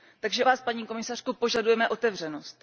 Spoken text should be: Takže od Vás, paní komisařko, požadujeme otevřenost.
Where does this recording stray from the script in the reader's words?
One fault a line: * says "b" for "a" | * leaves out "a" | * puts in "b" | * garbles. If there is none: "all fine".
* leaves out "od"